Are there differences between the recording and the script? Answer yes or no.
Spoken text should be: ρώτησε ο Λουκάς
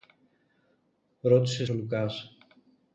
no